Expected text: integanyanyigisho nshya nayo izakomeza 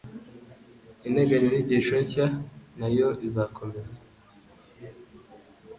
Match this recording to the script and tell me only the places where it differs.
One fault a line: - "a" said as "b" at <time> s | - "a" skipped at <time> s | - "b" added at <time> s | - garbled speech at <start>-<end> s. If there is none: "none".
none